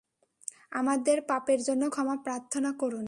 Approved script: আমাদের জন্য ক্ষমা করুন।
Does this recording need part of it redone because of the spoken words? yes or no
yes